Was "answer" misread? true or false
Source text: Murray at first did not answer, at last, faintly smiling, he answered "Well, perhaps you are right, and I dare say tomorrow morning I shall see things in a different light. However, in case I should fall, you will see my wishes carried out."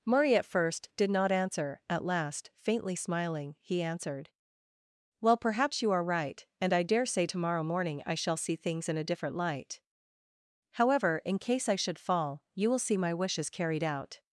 false